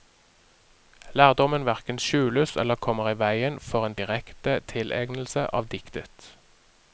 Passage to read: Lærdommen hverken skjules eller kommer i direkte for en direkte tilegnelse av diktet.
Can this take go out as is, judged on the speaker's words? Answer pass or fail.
fail